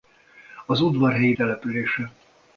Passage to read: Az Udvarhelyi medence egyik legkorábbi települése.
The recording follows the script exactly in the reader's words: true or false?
false